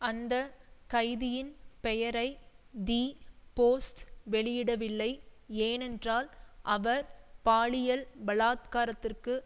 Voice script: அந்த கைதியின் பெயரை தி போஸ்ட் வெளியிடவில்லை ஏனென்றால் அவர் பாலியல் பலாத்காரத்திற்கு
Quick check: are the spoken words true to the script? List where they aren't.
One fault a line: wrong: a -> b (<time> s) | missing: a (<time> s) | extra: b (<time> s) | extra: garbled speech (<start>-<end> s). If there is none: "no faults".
no faults